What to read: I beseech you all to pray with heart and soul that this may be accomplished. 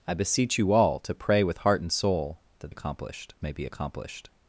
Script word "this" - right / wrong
wrong